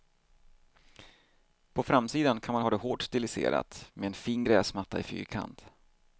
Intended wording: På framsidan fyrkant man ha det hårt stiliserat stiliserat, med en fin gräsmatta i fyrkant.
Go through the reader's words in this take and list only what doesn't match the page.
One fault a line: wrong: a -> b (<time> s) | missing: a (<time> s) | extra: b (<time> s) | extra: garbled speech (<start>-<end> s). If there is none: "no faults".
wrong: fyrkant -> kan (2.4 s)
missing: stiliserat (3.9 s)